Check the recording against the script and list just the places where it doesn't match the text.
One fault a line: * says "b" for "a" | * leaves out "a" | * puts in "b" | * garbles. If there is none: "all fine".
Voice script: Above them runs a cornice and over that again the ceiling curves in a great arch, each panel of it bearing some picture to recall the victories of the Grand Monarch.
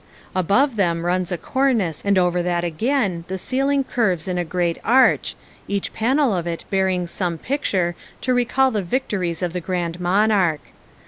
all fine